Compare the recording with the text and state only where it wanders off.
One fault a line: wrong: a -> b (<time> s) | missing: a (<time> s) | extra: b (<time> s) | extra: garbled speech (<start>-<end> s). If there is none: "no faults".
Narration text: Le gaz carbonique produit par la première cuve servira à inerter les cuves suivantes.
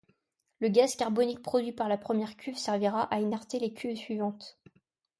no faults